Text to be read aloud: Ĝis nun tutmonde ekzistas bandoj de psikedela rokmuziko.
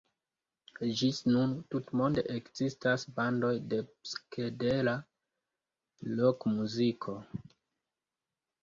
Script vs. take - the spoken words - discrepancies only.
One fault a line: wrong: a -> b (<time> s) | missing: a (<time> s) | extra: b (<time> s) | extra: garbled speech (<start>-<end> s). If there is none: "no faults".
no faults